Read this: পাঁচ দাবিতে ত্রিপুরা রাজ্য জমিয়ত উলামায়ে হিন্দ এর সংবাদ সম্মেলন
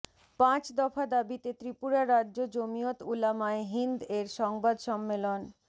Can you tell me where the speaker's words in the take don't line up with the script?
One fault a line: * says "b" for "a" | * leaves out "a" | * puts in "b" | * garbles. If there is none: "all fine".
* puts in "দফা"